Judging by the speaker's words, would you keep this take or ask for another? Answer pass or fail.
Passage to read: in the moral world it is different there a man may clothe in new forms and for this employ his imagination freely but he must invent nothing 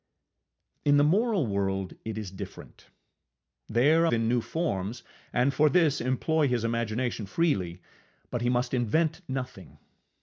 fail